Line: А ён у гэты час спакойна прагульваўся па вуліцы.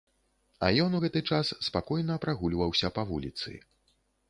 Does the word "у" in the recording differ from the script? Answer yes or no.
no